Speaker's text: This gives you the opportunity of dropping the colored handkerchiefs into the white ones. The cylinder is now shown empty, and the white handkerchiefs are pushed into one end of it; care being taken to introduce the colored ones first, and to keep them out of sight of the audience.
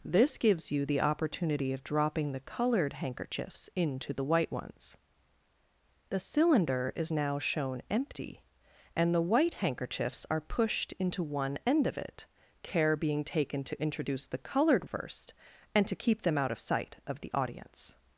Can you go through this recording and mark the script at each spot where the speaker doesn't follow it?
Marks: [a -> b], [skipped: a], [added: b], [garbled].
This gives you the opportunity of dropping the colored handkerchiefs into the white ones. The cylinder is now shown empty, and the white handkerchiefs are pushed into one end of it; care being taken to introduce the colored [skipped: ones] first, and to keep them out of sight of the audience.